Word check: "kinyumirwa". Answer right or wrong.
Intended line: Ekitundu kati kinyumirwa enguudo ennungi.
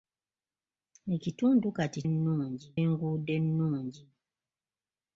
wrong